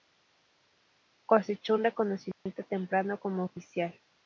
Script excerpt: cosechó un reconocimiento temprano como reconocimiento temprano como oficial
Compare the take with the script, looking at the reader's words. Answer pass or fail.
fail